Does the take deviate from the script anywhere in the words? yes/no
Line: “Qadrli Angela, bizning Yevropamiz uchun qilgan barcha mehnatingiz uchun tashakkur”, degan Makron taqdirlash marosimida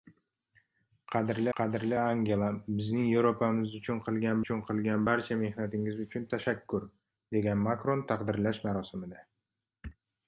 yes